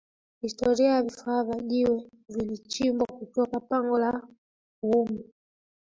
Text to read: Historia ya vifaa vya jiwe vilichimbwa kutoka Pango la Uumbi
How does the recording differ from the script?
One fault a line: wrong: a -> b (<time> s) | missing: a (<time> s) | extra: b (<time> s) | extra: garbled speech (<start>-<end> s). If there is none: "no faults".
no faults